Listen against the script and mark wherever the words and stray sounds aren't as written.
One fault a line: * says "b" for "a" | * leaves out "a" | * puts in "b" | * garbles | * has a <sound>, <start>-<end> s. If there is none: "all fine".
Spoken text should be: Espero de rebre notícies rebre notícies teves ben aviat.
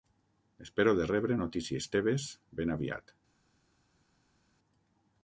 * leaves out "rebre notícies"